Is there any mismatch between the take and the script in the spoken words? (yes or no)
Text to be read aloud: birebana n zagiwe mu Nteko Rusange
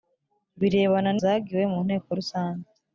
no